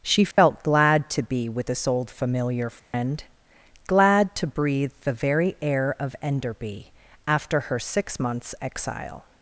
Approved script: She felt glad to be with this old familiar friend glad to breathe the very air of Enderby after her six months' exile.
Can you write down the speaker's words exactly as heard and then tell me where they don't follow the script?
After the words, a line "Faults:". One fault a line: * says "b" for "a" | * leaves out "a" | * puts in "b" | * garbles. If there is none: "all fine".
She felt glad to be with this old familiar friend glad to breathe the very air of Enderby after her six months' exile.
Faults:
all fine